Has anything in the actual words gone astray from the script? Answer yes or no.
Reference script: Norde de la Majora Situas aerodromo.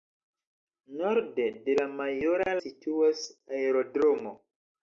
no